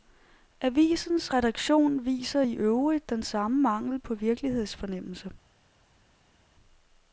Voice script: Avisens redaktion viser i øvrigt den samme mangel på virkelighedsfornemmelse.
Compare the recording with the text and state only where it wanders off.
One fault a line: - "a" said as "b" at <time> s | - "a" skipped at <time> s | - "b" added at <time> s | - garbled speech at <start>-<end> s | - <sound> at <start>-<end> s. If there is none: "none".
none